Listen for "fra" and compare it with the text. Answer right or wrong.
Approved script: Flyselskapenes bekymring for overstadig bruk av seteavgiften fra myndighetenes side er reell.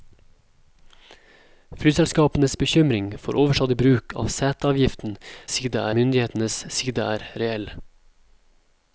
wrong